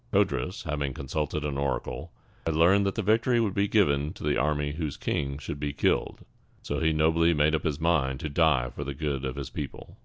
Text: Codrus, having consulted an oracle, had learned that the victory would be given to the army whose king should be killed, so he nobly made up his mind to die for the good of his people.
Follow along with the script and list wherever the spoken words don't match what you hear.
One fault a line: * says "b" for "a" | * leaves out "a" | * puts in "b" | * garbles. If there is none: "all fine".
all fine